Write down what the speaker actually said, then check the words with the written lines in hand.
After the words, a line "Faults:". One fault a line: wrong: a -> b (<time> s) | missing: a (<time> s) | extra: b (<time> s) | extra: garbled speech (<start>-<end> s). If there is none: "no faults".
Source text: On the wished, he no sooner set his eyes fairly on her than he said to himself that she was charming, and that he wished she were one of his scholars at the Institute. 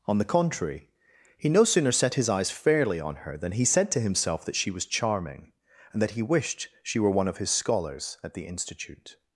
On the contrary, he no sooner set his eyes fairly on her than he said to himself that she was charming, and that he wished she were one of his scholars at the Institute.
Faults:
wrong: wished -> contrary (0.2 s)